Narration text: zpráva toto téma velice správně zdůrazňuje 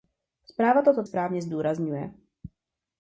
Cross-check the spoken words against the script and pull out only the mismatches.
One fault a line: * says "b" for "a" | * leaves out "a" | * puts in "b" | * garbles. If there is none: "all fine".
* leaves out "téma velice"